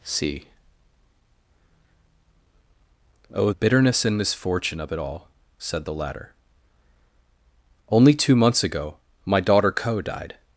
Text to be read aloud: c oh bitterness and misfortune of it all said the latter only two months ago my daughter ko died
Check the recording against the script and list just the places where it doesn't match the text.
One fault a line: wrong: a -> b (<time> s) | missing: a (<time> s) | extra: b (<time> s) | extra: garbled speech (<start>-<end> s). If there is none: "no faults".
no faults